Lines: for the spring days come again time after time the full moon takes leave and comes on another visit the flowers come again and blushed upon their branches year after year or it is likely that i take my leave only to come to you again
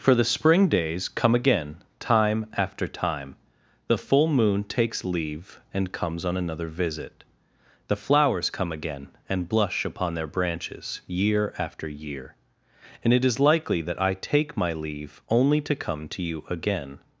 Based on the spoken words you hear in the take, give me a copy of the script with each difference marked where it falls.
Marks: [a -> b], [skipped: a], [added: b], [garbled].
for the spring days come again time after time the full moon takes leave and comes on another visit the flowers come again and [blushed -> blush] upon their branches year after year [or -> and] it is likely that i take my leave only to come to you again